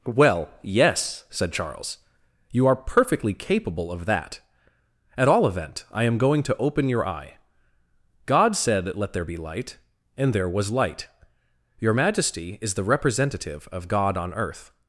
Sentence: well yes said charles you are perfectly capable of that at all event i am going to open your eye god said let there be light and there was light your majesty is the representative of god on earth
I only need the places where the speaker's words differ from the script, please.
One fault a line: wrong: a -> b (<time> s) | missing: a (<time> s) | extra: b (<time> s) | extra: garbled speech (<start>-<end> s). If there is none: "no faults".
no faults